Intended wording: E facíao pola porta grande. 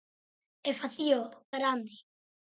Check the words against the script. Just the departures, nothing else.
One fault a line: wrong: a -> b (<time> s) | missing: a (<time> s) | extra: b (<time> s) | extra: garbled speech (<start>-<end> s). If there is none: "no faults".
missing: pola porta (1.2 s)